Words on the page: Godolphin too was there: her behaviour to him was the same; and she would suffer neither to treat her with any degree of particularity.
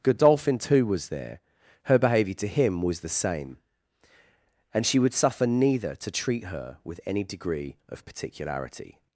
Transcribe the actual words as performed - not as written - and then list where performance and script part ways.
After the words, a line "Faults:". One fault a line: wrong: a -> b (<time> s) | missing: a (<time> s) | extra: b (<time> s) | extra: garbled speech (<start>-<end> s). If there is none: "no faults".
Godolphin too was there: her behaviour to him was the same; and she would suffer neither to treat her with any degree of particularity.
Faults:
no faults